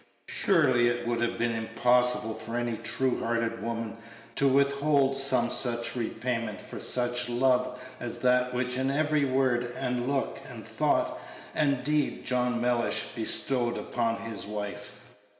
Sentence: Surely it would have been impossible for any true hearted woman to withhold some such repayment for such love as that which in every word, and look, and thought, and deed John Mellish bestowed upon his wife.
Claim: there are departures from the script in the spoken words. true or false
false